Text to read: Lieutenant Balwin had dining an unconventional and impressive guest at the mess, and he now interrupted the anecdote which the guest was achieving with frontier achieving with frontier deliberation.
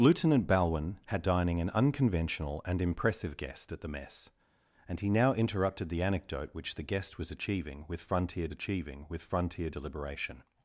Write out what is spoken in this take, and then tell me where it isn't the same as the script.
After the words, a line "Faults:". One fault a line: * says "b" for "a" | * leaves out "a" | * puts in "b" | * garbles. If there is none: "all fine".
Lieutenant Balwin had dining an unconventional and impressive guest at the mess, and he now interrupted the anecdote which the guest was achieving with frontier achieving with frontier deliberation.
Faults:
all fine